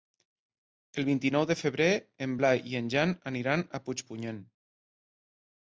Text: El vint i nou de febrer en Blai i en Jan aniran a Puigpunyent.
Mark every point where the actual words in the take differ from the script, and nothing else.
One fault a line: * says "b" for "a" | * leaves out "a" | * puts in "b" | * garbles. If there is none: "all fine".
all fine